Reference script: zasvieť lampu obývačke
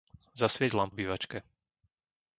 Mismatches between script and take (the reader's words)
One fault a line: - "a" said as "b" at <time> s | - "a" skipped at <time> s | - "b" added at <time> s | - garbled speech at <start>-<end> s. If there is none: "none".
none